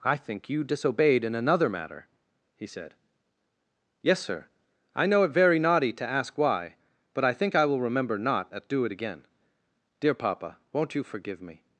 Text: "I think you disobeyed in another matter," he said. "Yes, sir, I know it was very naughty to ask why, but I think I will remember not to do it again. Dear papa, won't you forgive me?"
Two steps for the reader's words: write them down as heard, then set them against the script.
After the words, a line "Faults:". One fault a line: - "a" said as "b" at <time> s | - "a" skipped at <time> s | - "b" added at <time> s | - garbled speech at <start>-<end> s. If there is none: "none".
"I think you disobeyed in another matter," he said. "Yes, sir, I know it very naughty to ask why, but I think I will remember not at do it again. Dear papa, won't you forgive me?"
Faults:
- "was" skipped at 5.3 s
- "to" said as "at" at 8.5 s